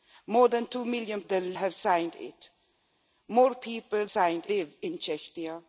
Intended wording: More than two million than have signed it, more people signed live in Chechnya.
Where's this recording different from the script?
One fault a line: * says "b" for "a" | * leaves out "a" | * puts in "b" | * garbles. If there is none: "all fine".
all fine